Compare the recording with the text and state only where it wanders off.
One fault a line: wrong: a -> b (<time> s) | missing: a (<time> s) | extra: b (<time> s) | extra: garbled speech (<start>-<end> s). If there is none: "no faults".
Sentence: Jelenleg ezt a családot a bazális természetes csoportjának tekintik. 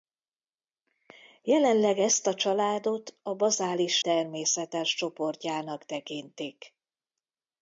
no faults